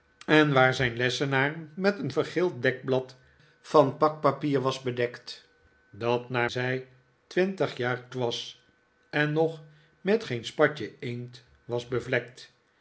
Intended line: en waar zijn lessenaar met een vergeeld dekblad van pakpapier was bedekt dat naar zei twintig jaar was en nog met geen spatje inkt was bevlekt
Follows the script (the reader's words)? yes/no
yes